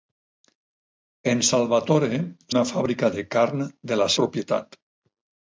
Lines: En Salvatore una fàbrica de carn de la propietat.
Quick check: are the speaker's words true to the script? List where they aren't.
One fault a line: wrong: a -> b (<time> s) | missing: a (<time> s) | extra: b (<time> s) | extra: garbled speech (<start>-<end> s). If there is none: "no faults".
no faults